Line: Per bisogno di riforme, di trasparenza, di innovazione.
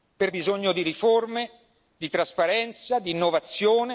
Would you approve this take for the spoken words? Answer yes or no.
yes